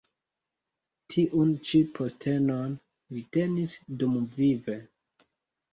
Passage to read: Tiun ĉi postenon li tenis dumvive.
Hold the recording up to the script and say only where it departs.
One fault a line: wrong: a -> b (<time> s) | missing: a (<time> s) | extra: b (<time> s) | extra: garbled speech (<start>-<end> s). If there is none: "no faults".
no faults